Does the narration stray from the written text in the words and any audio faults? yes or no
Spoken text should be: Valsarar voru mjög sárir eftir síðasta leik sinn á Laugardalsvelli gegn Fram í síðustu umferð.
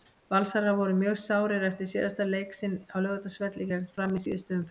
no